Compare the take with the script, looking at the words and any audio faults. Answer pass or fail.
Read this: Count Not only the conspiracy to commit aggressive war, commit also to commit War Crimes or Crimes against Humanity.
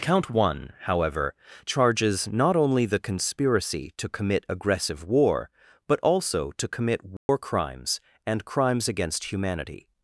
fail